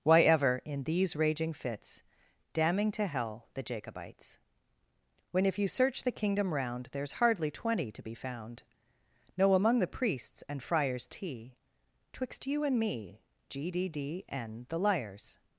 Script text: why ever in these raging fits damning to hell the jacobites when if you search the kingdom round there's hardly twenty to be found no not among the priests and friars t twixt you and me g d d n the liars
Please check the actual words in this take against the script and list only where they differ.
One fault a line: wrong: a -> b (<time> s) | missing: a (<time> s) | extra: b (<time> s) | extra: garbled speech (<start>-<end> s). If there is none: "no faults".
missing: not (9.5 s)